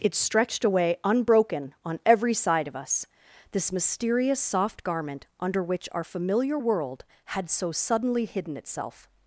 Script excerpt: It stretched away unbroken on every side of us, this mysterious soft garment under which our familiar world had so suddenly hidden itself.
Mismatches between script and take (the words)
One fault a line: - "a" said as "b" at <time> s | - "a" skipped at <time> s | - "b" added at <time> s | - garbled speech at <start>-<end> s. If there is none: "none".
none